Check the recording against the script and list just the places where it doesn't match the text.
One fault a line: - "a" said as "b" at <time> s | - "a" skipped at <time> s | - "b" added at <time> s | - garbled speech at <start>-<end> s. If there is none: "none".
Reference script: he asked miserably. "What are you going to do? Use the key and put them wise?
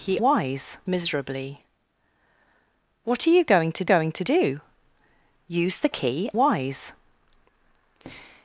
- "asked" said as "wise" at 0.2 s
- "going to" added at 3.8 s
- "and put them" skipped at 6.3 s